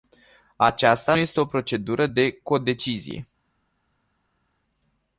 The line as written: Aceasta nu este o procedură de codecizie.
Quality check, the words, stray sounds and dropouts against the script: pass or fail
fail